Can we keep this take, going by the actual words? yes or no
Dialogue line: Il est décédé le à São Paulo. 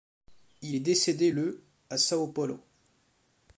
yes